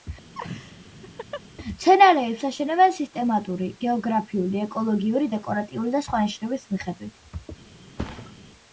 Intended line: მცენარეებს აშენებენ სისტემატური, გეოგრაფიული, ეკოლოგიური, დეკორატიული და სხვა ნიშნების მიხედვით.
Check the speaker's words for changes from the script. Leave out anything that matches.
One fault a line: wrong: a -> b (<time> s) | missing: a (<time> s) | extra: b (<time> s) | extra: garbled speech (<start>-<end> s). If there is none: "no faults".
no faults